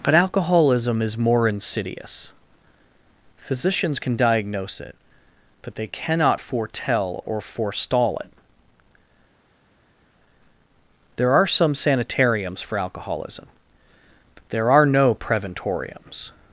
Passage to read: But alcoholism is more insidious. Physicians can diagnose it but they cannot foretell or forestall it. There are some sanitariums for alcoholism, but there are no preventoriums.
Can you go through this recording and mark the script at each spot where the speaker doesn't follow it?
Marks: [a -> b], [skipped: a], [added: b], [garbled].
But alcoholism is more insidious. Physicians can diagnose it but they cannot foretell or forestall it. There are some sanitariums for alcoholism, but there are no preventoriums.